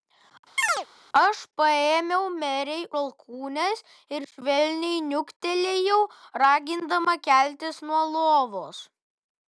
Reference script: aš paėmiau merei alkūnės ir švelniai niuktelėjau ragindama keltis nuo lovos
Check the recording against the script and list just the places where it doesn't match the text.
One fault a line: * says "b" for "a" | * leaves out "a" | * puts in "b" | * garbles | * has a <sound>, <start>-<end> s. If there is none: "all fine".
* has a chirp, 0.6-0.9 s